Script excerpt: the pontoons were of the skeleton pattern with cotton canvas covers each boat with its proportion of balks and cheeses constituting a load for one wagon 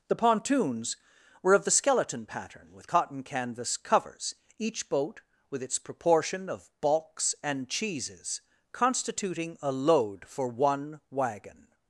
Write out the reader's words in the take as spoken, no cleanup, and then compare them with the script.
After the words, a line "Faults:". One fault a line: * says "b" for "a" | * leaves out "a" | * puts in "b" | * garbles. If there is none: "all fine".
the pontoons were of the skeleton pattern with cotton canvas covers each boat with its proportion of balks and cheeses constituting a load for one wagon
Faults:
all fine